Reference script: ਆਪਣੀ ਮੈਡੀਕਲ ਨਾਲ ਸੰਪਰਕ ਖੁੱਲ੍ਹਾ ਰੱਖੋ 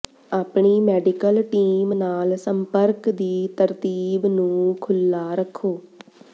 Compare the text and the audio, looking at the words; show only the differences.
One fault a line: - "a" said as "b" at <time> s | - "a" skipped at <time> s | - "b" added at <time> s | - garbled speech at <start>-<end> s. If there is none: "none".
- "ਟੀਮ" added at 1.4 s
- "ਦੀ ਤਰਤੀਬ ਨੂੰ" added at 3.1 s